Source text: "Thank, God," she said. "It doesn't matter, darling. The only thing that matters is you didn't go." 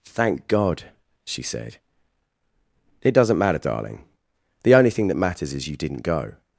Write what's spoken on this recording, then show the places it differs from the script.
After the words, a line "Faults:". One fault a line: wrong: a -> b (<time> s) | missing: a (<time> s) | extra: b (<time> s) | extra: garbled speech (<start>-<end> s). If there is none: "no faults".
"Thank, God," she said. "It doesn't matter, darling. The only thing that matters is you didn't go."
Faults:
no faults